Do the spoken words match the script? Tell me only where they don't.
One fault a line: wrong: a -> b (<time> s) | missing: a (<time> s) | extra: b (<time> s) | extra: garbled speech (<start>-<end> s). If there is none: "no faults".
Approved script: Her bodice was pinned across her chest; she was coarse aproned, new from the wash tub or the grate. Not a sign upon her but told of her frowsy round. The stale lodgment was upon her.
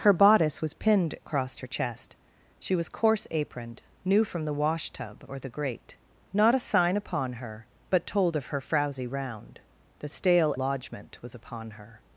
no faults